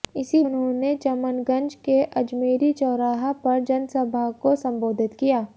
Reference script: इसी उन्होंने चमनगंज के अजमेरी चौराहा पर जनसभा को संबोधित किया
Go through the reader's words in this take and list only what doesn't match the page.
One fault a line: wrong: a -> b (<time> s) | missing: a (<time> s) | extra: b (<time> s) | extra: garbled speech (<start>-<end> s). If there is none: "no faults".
no faults